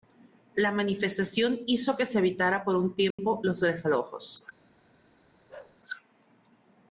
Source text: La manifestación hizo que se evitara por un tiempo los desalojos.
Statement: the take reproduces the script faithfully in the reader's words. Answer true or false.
true